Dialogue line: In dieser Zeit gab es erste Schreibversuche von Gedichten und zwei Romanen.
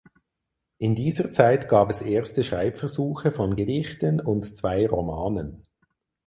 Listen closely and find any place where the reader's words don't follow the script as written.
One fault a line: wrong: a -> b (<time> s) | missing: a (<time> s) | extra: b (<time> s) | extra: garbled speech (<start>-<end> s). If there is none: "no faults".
no faults